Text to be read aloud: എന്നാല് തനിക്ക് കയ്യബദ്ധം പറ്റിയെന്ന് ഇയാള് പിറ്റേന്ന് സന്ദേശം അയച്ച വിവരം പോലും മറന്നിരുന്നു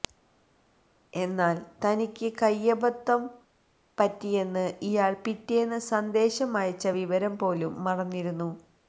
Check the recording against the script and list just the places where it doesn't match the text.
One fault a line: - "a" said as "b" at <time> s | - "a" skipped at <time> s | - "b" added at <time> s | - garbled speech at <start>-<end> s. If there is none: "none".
none